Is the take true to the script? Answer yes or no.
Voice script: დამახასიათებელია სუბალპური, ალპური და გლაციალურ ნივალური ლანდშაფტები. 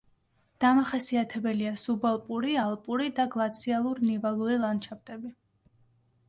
yes